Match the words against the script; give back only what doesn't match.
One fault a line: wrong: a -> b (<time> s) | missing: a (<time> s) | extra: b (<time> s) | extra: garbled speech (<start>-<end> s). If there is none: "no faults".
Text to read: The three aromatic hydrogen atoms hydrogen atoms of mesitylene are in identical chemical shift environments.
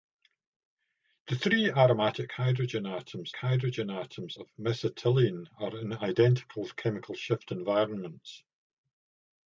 no faults